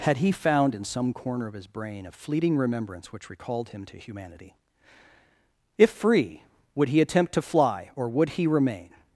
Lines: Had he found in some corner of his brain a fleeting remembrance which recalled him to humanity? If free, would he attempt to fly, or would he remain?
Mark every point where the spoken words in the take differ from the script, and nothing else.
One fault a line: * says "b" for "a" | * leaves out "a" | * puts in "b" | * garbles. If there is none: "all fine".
all fine